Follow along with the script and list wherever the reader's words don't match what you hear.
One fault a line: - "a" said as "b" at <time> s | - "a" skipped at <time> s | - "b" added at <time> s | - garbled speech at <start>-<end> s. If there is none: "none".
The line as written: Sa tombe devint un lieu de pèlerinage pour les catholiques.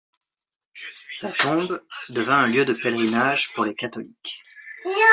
none